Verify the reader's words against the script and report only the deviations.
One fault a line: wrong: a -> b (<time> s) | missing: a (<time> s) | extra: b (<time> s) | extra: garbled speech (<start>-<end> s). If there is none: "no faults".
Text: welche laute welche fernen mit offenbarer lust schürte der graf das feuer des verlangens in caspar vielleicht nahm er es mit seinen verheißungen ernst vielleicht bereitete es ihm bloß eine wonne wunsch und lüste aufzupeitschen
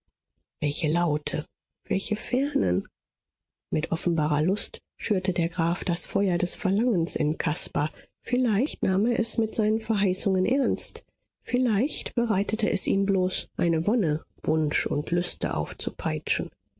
no faults